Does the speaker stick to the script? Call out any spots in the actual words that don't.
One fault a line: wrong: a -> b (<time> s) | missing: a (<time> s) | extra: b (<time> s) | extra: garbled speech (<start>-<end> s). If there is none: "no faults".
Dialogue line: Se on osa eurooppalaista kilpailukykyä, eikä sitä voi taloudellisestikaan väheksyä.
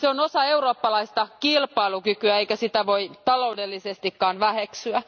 no faults